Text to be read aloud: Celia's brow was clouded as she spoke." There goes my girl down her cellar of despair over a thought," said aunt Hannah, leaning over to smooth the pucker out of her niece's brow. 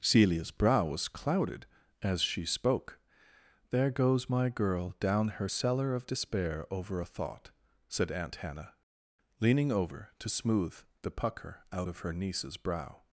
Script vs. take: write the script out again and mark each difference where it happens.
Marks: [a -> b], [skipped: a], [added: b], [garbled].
Celia's brow was clouded as she spoke." There goes my girl down her cellar of despair over a thought," said aunt Hannah, leaning over to smooth the pucker out of her niece's brow.